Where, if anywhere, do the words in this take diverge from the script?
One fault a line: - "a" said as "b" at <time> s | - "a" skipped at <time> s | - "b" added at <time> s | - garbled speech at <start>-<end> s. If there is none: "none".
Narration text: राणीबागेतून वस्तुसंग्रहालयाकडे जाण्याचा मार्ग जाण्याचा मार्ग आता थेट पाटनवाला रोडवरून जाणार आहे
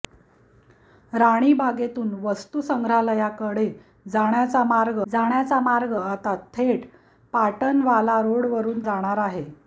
none